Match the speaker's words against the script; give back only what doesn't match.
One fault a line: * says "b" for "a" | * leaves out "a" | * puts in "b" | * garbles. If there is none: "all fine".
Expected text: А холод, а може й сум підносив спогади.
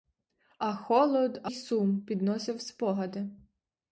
* leaves out "може"